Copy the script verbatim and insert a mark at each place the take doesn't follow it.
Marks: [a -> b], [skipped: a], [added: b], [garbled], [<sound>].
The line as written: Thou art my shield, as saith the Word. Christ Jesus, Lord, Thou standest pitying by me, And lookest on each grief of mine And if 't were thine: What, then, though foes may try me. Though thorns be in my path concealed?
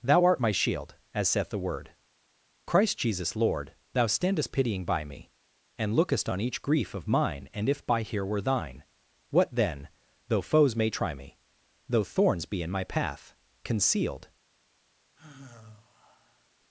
Thou art my shield, as saith the Word. Christ Jesus, Lord, Thou standest pitying by me, And lookest on each grief of mine And if ['t -> by here] were thine: What, then, though foes may try me. Though thorns be in my path concealed? [sigh]